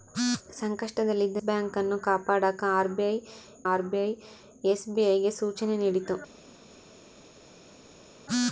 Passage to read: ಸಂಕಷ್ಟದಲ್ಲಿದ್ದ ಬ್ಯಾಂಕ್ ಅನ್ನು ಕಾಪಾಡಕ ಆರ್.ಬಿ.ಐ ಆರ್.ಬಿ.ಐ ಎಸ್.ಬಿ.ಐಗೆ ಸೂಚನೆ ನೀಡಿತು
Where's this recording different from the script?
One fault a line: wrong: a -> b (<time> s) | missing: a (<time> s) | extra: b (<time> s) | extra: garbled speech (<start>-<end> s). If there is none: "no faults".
no faults